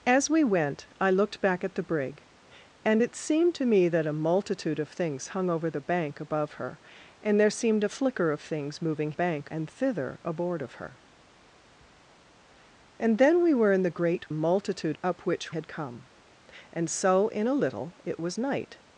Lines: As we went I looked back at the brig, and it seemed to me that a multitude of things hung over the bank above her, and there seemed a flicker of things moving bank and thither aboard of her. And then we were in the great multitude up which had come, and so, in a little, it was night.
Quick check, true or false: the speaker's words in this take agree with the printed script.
true